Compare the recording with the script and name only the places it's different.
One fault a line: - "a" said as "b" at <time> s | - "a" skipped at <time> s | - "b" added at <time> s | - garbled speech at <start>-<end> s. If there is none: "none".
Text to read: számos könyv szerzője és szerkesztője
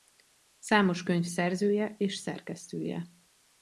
none